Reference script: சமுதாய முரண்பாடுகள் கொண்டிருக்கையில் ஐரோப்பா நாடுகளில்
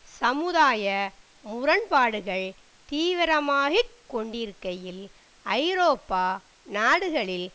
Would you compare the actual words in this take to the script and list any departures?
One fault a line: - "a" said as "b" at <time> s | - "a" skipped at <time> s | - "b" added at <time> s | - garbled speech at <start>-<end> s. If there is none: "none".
- "தீவிரமாகிக்" added at 2.9 s